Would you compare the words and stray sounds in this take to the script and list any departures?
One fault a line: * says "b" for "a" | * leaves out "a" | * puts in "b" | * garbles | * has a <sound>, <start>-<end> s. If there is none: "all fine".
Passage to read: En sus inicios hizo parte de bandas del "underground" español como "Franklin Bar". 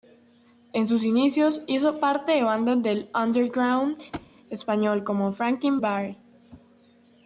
* has a thud, 4.1-4.3 s